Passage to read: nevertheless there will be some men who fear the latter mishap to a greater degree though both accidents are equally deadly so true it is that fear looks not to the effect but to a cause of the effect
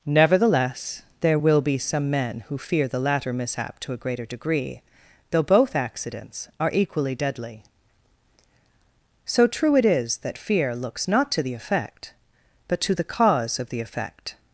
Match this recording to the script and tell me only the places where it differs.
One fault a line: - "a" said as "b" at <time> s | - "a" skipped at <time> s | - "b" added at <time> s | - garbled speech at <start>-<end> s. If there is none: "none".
- "a" said as "the" at 12.9 s